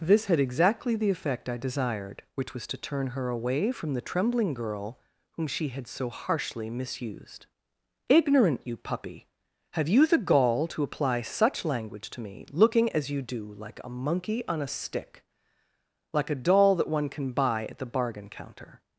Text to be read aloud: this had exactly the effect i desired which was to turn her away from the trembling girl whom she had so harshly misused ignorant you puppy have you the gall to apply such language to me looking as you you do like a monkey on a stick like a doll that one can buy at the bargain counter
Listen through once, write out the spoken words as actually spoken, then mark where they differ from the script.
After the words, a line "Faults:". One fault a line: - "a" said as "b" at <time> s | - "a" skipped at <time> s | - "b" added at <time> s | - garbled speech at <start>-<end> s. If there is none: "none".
this had exactly the effect i desired which was to turn her away from the trembling girl whom she had so harshly misused ignorant you puppy have you the gall to apply such language to me looking as you do like a monkey on a stick like a doll that one can buy at the bargain counter
Faults:
- "you" skipped at 13.2 s